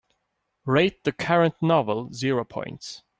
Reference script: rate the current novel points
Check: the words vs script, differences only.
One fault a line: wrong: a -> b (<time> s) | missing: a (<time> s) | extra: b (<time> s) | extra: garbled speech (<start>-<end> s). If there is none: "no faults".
extra: zero (2.1 s)